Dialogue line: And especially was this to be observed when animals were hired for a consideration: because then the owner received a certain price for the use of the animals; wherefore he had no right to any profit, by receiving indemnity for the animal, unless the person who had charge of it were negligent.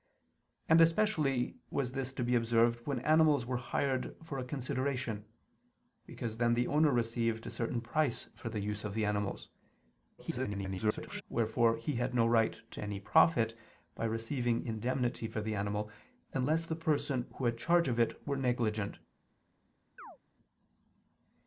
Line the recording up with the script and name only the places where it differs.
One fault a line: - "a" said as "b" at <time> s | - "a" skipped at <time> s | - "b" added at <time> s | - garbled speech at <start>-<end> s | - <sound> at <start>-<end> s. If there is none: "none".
- garbled speech at 10.2-11.2 s
- chirp at 20.0-20.2 s